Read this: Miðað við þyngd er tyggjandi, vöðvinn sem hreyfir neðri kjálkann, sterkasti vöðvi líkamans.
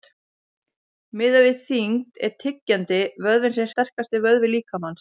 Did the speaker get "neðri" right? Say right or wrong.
wrong